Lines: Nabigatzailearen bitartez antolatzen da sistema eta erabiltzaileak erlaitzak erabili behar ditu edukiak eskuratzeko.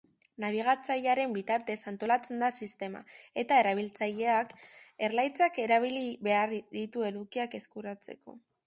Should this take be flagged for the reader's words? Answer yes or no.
no